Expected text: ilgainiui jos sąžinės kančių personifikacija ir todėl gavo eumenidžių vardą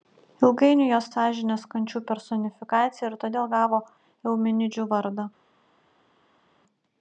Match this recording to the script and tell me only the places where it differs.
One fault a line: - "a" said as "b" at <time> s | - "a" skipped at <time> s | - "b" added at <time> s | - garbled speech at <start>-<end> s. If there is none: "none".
none